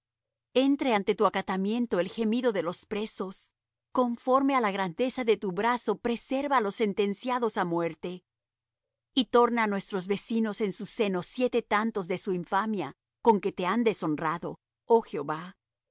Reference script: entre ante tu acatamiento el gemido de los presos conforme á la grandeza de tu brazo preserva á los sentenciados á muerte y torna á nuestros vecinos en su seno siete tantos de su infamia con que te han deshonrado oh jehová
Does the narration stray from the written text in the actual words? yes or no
no